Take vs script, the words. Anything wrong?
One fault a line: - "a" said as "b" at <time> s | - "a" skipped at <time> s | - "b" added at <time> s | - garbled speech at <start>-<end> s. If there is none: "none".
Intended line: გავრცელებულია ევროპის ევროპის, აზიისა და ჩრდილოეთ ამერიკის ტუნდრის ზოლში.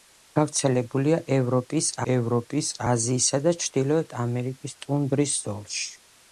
none